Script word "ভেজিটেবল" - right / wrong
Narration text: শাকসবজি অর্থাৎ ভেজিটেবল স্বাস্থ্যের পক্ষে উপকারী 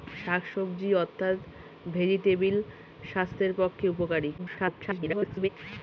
right